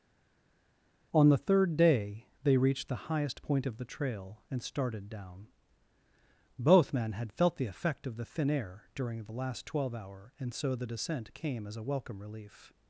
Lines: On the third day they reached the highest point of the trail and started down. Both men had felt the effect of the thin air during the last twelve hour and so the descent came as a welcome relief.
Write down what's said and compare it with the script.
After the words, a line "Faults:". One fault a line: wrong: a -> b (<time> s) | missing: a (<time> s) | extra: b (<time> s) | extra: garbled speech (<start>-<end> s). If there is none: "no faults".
On the third day they reached the highest point of the trail and started down. Both men had felt the effect of the thin air during the last twelve hour and so the descent came as a welcome relief.
Faults:
no faults